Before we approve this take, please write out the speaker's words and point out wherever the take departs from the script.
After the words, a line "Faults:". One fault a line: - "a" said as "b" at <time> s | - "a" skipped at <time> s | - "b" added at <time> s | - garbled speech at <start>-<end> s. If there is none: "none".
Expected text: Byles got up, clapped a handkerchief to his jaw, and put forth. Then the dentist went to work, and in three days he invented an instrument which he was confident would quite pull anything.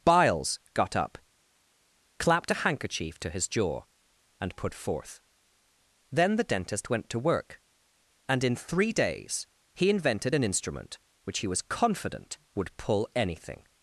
Byles got up, clapped a handkerchief to his jaw, and put forth. Then the dentist went to work, and in three days he invented an instrument which he was confident would pull anything.
Faults:
- "quite" skipped at 12.7 s